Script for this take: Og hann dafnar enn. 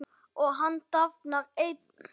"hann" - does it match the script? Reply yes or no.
yes